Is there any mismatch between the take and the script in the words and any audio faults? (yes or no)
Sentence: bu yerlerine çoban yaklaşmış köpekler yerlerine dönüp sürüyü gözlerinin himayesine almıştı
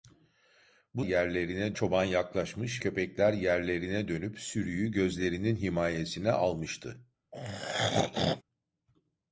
yes